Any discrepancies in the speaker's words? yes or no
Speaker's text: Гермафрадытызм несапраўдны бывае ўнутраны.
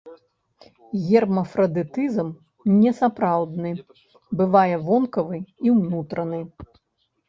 yes